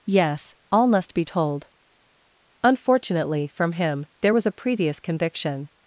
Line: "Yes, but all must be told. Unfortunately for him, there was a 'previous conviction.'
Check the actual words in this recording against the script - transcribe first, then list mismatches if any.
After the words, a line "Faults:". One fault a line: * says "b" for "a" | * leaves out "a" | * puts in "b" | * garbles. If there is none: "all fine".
"Yes, all must be told. Unfortunately from him, there was a 'previous conviction.'
Faults:
* leaves out "but"
* says "from" for "for"